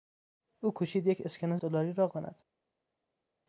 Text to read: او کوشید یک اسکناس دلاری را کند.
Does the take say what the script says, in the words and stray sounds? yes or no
yes